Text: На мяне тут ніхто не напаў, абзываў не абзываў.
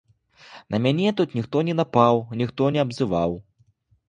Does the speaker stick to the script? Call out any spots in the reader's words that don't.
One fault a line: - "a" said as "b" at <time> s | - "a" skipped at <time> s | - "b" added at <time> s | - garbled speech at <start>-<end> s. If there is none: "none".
- "абзываў" said as "ніхто" at 2.4 s